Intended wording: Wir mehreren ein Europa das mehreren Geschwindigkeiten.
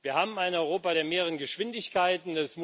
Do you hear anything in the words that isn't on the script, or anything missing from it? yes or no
yes